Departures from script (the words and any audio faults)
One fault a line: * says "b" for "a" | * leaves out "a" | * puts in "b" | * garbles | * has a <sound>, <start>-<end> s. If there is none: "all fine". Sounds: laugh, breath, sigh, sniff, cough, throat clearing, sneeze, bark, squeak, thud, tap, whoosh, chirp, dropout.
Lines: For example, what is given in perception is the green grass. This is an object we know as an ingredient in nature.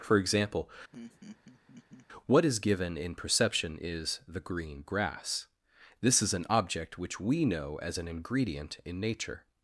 * has a laugh, 0.9-2.1 s
* puts in "which"